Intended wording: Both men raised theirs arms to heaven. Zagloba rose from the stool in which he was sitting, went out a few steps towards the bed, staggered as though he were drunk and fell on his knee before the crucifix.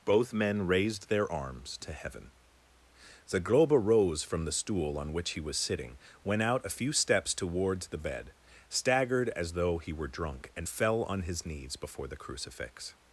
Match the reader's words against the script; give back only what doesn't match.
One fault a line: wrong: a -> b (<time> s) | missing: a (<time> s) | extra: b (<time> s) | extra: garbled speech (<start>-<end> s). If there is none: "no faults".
wrong: theirs -> their (1.1 s)
wrong: in -> on (5.0 s)
wrong: knee -> knees (11.5 s)